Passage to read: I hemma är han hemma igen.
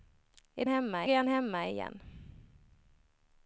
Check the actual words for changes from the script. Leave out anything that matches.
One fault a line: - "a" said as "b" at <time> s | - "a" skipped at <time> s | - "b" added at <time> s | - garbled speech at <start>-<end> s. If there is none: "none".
none